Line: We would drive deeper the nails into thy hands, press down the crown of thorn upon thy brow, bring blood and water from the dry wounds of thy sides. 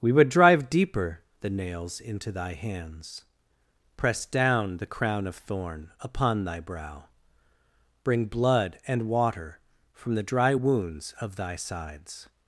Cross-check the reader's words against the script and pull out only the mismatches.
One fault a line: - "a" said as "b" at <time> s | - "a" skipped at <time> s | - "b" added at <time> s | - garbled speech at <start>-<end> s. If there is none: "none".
none